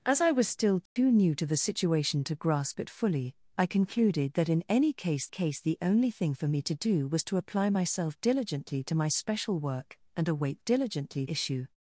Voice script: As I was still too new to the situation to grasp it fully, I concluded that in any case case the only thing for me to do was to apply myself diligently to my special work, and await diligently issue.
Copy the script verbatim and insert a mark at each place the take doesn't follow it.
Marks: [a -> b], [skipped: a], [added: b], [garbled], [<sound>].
As I was still too [dropout] new to the situation to grasp it fully, I concluded that in any case case the only thing for me to do was to apply myself diligently to my special work, and await diligently issue.